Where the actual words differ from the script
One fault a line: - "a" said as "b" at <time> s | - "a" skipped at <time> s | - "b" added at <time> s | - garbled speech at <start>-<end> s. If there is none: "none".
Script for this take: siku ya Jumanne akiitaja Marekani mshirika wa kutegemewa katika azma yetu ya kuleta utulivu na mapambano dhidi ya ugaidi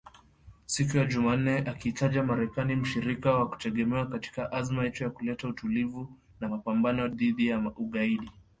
none